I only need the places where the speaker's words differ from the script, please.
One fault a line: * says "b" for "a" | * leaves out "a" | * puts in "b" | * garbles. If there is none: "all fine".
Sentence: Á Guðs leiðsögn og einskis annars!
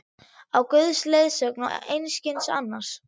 all fine